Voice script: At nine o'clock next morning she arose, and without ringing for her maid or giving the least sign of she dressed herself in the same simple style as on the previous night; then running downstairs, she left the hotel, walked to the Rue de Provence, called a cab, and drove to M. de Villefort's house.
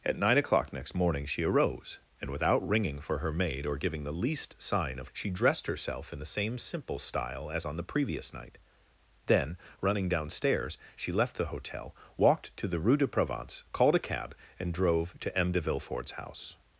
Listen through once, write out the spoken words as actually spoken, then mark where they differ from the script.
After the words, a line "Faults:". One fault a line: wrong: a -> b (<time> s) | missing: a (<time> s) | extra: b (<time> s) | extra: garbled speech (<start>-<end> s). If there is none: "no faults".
At nine o'clock next morning she arose, and without ringing for her maid or giving the least sign of she dressed herself in the same simple style as on the previous night; then running downstairs, she left the hotel, walked to the Rue de Provence, called a cab, and drove to M. de Villefort's house.
Faults:
no faults